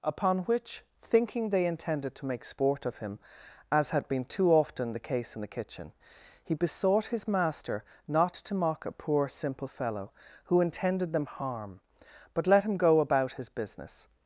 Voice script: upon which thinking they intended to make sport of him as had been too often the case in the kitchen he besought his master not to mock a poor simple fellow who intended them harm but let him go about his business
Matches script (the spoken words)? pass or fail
pass